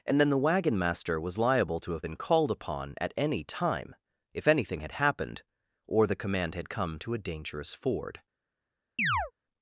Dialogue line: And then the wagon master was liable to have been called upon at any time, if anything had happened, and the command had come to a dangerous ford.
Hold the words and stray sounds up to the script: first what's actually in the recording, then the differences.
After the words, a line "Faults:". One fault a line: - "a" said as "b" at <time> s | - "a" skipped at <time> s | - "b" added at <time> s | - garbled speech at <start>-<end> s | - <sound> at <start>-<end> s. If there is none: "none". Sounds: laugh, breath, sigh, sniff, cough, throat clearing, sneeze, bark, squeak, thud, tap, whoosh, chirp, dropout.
And then the wagon master was liable to have been called upon at any time, if anything had happened, or the command had come to a dangerous ford.
Faults:
- "and" said as "or" at 5.9 s
- chirp at 9.0-9.3 s